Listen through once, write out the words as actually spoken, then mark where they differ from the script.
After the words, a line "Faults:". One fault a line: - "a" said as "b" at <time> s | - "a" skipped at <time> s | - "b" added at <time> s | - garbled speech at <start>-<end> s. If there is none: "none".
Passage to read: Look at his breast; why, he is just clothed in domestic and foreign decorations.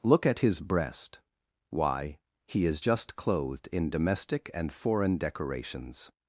Look at his breast; why, he is just clothed in domestic and foreign decorations.
Faults:
none